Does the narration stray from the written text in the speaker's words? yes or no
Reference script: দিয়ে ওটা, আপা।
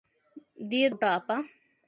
no